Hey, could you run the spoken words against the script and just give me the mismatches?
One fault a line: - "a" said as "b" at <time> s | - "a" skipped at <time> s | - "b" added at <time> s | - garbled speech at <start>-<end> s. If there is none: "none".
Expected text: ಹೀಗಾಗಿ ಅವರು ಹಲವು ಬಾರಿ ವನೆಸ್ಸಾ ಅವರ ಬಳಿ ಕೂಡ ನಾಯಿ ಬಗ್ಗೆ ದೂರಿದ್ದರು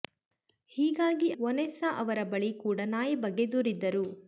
- "ಅವರು ಹಲವು ಬಾರಿ" skipped at 1.3 s